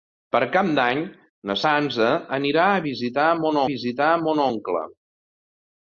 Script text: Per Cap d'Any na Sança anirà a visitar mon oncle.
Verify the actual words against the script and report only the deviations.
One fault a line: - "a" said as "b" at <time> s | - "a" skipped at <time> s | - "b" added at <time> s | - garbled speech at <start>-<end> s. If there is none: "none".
- "visitar mon" added at 3.7 s